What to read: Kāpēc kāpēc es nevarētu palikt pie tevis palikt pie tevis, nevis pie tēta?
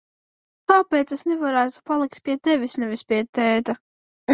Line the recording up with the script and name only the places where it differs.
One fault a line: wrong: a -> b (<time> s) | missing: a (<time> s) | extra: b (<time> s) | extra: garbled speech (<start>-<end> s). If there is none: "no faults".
missing: kāpēc (1.1 s)
missing: palikt pie tevis (2.8 s)